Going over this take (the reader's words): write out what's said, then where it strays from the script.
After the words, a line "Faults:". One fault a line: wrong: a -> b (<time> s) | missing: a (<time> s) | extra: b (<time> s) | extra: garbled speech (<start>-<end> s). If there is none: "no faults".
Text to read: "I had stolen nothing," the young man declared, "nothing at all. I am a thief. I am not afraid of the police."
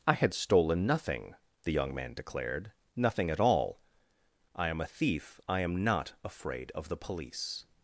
"I had stolen nothing," the young man declared, "nothing at all. I am a thief. I am not afraid of the police."
Faults:
no faults